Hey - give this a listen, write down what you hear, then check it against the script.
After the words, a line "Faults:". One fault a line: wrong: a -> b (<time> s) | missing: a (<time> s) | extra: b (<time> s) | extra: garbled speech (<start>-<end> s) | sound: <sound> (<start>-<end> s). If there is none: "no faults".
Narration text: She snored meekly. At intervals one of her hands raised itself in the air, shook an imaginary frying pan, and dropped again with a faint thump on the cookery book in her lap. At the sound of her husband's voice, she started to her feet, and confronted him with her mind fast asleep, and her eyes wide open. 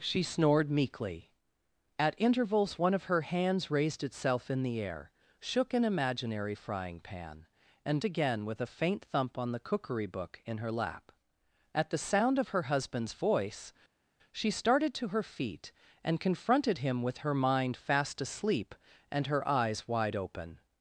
She snored meekly. At intervals one of her hands raised itself in the air, shook an imaginary frying pan, and again with a faint thump on the cookery book in her lap. At the sound of her husband's voice, she started to her feet, and confronted him with her mind fast asleep, and her eyes wide open.
Faults:
missing: dropped (8.0 s)